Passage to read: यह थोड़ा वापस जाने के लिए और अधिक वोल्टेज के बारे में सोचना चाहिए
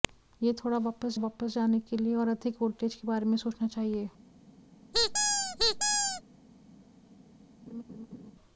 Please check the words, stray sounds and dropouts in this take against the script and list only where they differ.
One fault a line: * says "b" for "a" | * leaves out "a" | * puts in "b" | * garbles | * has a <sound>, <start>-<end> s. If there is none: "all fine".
* puts in "वापस"
* has a squeak, 4.9-6.2 s
* has a laugh, 7.7-8.3 s